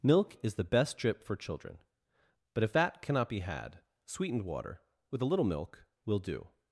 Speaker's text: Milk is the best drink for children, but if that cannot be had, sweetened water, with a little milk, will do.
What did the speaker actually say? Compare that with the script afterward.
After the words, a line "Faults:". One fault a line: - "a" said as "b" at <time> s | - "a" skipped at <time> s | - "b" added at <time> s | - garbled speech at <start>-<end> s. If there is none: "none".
Milk is the best drip for children, but if that cannot be had, sweetened water, with a little milk, will do.
Faults:
- "drink" said as "drip" at 1.0 s